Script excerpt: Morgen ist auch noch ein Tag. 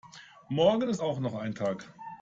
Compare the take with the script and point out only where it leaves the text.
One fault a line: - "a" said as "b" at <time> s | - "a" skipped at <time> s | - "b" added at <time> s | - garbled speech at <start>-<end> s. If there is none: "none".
none